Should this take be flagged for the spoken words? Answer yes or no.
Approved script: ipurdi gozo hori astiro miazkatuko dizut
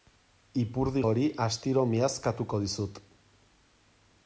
yes